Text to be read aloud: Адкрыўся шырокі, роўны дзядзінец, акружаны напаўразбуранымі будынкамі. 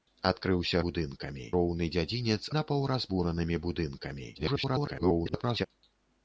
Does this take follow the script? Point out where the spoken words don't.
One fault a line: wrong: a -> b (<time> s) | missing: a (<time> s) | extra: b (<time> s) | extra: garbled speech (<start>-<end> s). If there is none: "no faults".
wrong: шырокі -> будынкамі (0.9 s)
missing: акружаны (2.4 s)
extra: garbled speech (4.3-5.7 s)